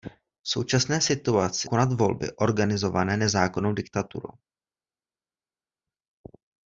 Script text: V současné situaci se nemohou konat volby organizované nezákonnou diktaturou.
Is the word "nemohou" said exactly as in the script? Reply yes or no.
no